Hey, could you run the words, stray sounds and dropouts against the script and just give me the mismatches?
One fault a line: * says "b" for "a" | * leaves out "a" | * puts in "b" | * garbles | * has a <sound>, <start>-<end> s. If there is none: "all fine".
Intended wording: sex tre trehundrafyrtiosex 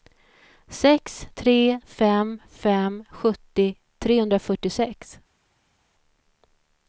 * puts in "fem fem sjuttio"